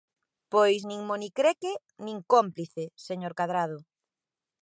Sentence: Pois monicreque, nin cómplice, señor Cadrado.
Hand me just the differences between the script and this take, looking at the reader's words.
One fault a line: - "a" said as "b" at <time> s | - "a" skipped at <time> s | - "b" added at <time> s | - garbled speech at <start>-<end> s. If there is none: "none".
- "nin" added at 0.9 s